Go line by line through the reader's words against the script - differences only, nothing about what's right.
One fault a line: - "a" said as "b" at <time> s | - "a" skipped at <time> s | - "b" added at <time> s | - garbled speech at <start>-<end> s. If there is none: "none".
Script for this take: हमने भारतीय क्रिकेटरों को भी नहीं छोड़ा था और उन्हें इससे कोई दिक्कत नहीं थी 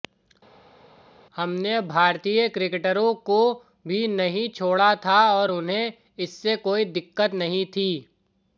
none